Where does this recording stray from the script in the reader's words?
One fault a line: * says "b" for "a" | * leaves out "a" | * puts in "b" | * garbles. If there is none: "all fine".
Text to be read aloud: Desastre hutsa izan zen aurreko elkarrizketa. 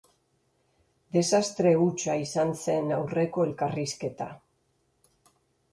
all fine